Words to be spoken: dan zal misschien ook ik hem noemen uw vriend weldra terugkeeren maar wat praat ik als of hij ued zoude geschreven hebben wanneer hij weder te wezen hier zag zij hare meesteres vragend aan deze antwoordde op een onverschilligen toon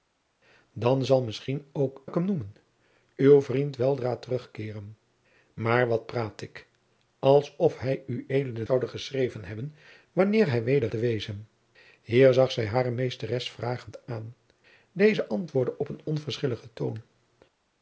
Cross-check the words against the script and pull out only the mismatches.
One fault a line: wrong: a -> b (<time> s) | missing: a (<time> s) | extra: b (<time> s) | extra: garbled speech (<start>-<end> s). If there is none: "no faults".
no faults